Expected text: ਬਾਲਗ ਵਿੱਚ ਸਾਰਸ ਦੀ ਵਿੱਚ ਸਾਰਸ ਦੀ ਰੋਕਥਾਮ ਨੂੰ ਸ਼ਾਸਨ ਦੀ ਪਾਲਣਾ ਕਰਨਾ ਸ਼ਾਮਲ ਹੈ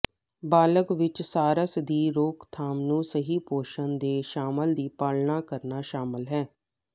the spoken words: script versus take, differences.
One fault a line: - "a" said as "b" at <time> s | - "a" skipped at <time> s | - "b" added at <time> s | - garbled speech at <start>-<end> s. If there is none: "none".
- "ਵਿੱਚ ਸਾਰਸ ਦੀ ਰੋਕਥਾਮ ਨੂੰ" said as "ਰੋਕਥਾਮ ਨੂੰ ਸਹੀ ਪੋਸ਼ਣ ਦੇ" at 2.1 s